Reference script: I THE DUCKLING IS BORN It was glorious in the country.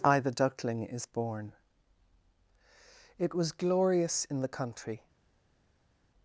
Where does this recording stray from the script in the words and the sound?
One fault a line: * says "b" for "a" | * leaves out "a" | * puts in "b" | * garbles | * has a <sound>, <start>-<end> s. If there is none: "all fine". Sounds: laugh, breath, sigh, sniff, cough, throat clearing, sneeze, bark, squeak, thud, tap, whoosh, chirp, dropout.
all fine